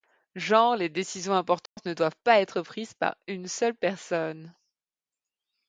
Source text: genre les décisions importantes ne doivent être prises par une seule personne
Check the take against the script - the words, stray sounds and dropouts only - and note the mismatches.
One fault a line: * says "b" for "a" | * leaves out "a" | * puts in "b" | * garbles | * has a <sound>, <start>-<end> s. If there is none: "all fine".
* has a dropout, 1.7-1.8 s
* puts in "pas"